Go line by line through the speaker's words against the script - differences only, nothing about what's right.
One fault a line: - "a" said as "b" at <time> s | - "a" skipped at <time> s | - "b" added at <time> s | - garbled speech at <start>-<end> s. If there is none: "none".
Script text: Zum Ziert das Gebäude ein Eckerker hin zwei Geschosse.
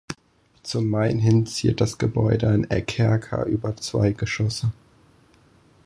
- "Main hin" added at 0.9 s
- "hin" said as "über" at 3.4 s